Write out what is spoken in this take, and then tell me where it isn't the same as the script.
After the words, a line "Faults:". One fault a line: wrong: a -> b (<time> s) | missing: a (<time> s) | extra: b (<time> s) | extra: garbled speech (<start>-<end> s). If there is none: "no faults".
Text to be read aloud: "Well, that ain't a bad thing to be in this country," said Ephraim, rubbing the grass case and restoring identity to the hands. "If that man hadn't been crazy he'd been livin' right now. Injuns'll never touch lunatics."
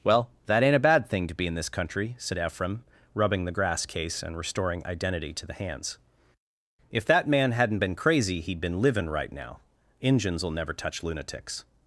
"Well, that ain't a bad thing to be in this country," said Ephraim, rubbing the grass case and restoring identity to the hands. "If that man hadn't been crazy he'd been livin' right now. Injuns'll never touch lunatics."
Faults:
no faults